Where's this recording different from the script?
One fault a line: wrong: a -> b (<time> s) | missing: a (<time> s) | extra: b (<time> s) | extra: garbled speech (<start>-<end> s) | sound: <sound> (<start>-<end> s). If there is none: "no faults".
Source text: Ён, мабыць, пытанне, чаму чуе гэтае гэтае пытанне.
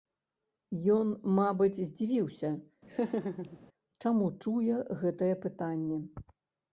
wrong: пытанне -> здзівіўся (1.9 s)
sound: laugh (2.9-3.6 s)
missing: гэтае (5.3 s)